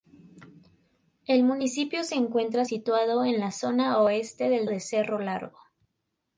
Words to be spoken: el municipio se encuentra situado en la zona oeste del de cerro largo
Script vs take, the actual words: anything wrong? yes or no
no